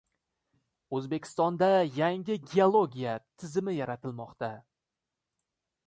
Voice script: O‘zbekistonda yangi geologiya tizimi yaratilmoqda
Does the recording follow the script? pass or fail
pass